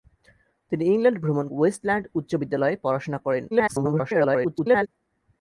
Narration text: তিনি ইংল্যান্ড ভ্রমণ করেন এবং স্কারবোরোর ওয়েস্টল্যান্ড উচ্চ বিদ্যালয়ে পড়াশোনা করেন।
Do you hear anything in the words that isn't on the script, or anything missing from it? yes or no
yes